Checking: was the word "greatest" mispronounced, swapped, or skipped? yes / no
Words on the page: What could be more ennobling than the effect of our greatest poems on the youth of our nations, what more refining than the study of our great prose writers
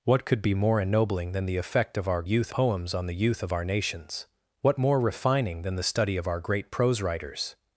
yes